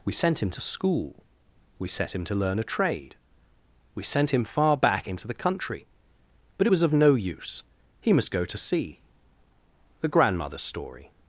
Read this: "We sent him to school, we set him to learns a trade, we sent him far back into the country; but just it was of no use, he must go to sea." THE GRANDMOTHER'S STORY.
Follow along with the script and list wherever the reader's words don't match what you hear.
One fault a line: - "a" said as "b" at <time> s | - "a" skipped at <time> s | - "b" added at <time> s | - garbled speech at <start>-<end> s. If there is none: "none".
- "learns" said as "learn" at 2.4 s
- "just" skipped at 6.7 s